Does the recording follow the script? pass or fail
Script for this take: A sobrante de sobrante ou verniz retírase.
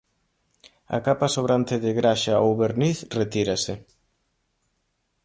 fail